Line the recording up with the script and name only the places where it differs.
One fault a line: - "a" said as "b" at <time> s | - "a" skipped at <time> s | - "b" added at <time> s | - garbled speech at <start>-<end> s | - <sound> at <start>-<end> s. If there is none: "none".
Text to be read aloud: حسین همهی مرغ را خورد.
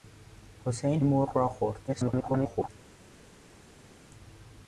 - "همهی" skipped at 1.0 s
- garbled speech at 1.9-2.7 s